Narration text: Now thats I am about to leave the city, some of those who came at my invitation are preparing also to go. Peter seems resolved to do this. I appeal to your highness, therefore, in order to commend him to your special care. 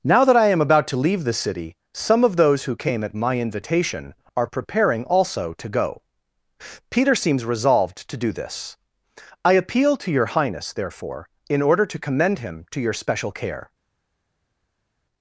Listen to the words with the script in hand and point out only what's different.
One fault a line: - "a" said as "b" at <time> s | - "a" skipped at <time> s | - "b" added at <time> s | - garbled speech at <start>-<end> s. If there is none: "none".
- "thats" said as "that" at 0.2 s